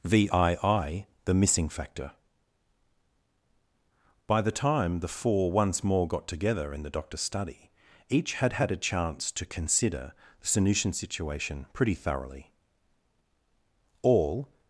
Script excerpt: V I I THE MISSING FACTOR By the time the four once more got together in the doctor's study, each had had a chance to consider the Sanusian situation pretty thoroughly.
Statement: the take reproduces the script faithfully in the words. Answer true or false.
false